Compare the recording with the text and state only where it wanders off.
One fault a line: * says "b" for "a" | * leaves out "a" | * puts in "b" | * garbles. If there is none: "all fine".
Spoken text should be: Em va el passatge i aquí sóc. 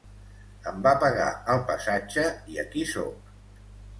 * puts in "pagar"